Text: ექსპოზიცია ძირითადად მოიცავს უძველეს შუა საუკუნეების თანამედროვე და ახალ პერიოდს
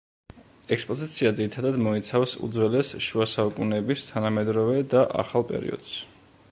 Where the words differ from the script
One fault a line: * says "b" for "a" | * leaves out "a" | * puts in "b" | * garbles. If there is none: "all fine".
all fine